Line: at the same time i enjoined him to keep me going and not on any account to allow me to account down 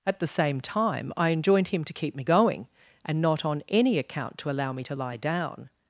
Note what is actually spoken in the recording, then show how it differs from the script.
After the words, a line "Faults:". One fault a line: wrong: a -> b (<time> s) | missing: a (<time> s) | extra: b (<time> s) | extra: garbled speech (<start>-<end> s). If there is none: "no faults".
at the same time i enjoined him to keep me going and not on any account to allow me to lie down
Faults:
wrong: account -> lie (4.9 s)